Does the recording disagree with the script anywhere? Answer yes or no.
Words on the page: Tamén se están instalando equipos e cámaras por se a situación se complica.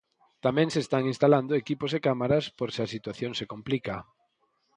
no